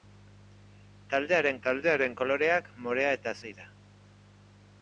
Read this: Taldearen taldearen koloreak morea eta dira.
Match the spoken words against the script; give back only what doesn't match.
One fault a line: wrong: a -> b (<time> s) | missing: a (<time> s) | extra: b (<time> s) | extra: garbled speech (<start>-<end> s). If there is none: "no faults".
no faults